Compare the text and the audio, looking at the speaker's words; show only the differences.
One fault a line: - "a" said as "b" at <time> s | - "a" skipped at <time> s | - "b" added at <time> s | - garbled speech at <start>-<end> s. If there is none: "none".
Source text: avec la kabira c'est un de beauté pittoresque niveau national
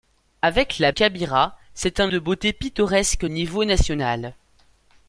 none